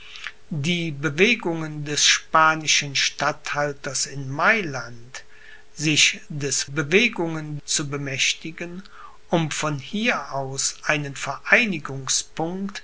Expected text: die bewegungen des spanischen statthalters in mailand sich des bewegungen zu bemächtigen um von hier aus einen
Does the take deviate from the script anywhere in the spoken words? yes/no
no